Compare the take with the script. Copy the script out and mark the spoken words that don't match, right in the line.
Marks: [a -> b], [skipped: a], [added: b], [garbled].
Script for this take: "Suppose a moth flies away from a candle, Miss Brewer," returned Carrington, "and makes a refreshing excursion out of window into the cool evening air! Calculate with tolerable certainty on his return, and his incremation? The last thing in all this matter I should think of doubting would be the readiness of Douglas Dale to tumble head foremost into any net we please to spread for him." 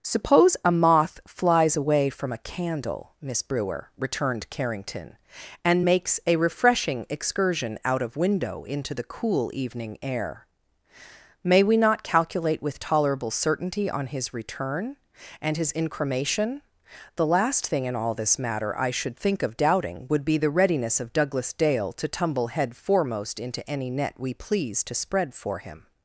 "Suppose a moth flies away from a candle, Miss Brewer," returned Carrington, "and makes a refreshing excursion out of window into the cool evening air! [added: May we not] Calculate with tolerable certainty on his return, and his incremation? The last thing in all this matter I should think of doubting would be the readiness of Douglas Dale to tumble head foremost into any net we please to spread for him."